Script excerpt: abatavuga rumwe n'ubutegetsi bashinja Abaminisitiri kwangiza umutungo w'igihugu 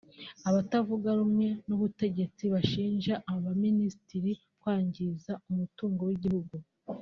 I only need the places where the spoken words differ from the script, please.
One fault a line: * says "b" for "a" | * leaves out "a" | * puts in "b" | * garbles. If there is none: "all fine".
all fine